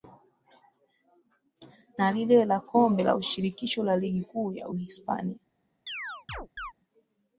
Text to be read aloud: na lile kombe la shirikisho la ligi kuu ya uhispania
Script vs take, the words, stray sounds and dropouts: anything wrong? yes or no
yes